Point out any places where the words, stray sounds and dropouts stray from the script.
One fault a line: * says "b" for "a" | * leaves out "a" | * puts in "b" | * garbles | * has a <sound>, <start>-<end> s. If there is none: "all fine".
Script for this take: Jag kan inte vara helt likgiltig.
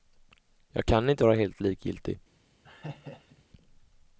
* has a laugh, 2.6-3.4 s